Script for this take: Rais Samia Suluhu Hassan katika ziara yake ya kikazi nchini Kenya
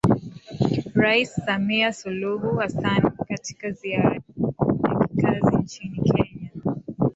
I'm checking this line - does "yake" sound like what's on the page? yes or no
no